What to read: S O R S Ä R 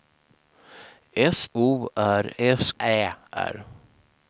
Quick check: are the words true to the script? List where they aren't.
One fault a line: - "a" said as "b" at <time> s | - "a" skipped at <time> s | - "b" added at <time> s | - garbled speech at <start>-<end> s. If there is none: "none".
none